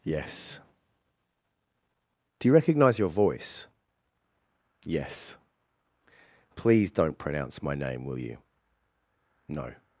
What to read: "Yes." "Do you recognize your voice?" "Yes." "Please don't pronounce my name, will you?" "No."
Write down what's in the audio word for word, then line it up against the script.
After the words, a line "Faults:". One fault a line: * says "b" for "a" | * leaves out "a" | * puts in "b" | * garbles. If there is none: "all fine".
"Yes." "Do you recognize your voice?" "Yes." "Please don't pronounce my name, will you?" "No."
Faults:
all fine